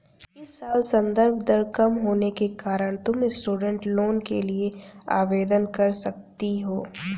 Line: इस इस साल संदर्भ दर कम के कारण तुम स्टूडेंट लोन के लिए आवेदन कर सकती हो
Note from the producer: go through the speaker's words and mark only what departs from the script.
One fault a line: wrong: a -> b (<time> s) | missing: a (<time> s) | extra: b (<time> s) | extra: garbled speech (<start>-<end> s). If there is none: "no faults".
missing: इस (0.5 s)
extra: होने (2.0 s)